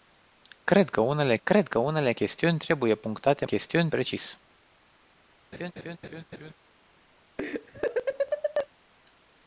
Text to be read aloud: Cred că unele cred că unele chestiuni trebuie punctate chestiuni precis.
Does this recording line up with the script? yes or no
yes